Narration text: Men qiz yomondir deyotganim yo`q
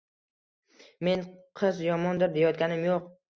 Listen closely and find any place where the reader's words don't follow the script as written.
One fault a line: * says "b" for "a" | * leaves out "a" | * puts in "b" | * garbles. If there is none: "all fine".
all fine